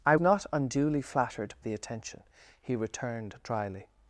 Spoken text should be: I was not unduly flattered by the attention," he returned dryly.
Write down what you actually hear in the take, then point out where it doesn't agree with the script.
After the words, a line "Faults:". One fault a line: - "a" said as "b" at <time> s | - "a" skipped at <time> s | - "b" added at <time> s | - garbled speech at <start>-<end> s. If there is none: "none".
I not unduly flattered the attention," he returned dryly.
Faults:
- "was" skipped at 0.1 s
- "by" skipped at 1.5 s